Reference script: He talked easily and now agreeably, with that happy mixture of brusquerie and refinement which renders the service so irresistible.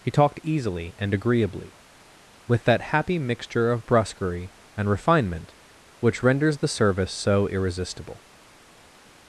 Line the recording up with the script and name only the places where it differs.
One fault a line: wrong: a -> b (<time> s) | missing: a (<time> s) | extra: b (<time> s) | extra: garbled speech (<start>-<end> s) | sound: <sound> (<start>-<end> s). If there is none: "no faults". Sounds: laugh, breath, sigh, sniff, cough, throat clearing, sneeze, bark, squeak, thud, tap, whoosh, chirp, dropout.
missing: now (1.1 s)